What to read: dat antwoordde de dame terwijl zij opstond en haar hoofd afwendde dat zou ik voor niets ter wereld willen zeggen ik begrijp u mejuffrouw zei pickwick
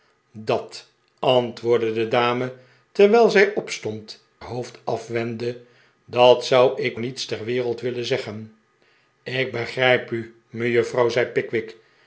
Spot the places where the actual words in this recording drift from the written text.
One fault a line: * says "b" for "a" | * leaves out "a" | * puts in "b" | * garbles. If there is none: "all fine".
* leaves out "en haar"
* leaves out "voor"